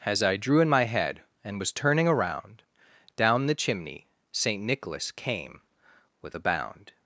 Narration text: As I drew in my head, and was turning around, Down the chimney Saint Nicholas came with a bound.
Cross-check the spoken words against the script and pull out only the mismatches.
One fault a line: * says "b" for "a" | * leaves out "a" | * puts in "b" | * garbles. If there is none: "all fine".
all fine